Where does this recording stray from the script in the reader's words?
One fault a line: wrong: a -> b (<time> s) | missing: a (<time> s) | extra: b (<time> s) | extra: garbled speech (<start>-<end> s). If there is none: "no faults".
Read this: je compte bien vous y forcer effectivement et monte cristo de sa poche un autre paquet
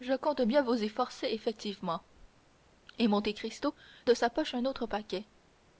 no faults